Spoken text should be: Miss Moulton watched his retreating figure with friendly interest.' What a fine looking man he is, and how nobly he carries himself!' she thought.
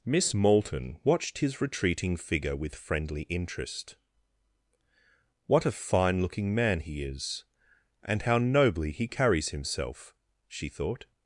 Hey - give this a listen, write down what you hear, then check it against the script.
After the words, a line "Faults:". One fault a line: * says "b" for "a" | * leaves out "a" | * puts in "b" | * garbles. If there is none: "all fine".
Miss Moulton watched his retreating figure with friendly interest.' What a fine looking man he is, and how nobly he carries himself!' she thought.
Faults:
all fine